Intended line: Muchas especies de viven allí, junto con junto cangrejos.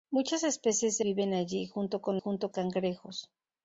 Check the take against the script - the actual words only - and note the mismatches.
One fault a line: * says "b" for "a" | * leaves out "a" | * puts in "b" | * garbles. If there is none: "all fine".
all fine